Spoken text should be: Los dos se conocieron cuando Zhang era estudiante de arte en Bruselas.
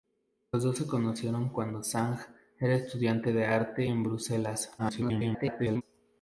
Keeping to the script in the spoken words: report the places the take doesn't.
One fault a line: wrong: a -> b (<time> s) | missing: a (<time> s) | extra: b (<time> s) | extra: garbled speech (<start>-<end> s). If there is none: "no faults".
extra: garbled speech (4.8-5.8 s)